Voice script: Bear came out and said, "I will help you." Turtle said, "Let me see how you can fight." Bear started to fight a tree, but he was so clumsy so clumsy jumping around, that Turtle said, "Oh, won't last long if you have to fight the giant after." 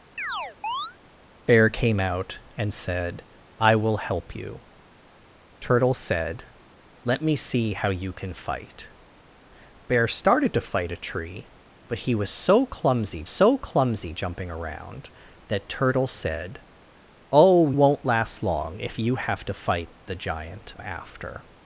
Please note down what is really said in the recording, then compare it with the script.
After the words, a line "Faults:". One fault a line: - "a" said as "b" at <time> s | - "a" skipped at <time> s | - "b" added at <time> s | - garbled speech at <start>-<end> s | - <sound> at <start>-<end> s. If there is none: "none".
Bear came out and said, "I will help you." Turtle said, "Let me see how you can fight." Bear started to fight a tree, but he was so clumsy so clumsy jumping around, that Turtle said, "Oh, won't last long if you have to fight the giant after."
Faults:
- chirp at 0.2-1.0 s